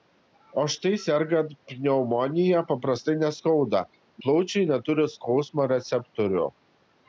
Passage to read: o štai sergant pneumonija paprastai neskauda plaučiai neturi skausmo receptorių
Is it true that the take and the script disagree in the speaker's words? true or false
false